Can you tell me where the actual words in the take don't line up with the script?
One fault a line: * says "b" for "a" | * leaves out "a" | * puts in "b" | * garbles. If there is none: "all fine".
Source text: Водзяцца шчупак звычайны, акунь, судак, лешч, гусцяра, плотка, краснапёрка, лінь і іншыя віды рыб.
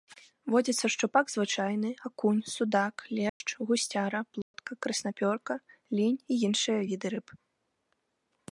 all fine